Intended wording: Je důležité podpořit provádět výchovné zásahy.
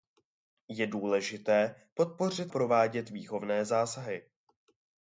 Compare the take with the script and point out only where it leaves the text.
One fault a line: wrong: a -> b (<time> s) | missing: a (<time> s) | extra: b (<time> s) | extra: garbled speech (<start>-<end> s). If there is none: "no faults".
no faults